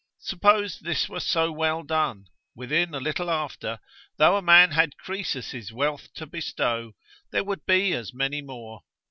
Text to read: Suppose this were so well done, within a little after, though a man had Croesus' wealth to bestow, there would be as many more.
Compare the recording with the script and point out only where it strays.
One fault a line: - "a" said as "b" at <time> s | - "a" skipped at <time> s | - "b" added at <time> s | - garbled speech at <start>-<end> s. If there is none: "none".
none